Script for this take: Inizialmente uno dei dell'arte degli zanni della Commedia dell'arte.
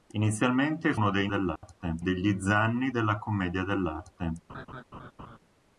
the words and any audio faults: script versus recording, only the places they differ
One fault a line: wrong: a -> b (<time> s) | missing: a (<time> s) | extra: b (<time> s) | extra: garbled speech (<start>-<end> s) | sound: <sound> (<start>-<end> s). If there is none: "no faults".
sound: dropout (1.6-1.6 s)
sound: laugh (4.5-5.4 s)